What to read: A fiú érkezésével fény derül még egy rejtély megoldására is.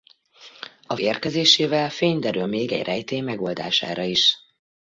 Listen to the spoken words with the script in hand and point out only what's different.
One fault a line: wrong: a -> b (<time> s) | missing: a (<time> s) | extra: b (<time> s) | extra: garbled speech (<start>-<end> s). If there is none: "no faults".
missing: fiú (0.9 s)